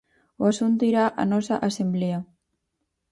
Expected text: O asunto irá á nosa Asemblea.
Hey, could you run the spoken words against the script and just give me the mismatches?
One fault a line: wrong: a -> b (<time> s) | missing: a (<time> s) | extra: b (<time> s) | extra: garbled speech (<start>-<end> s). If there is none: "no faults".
no faults